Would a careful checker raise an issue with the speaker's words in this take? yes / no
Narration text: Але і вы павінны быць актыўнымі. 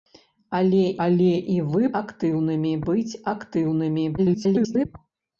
yes